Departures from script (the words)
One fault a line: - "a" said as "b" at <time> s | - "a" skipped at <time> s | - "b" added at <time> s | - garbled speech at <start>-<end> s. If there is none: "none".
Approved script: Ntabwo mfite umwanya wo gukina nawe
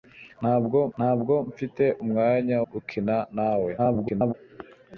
- "ntabwo" added at 1.0 s
- "wo" skipped at 2.6 s
- garbled speech at 3.8-4.3 s